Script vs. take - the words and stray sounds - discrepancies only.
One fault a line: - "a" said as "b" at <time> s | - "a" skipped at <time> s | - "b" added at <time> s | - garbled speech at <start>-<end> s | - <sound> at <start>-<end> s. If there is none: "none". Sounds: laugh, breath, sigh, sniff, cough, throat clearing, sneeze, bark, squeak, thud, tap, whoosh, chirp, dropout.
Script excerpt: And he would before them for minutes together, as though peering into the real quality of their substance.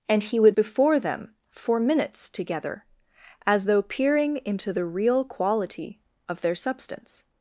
none